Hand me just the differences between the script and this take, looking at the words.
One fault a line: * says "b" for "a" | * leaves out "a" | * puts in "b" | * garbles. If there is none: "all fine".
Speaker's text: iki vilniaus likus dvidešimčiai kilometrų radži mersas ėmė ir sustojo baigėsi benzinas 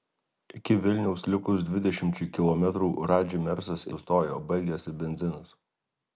* leaves out "ėmė ir"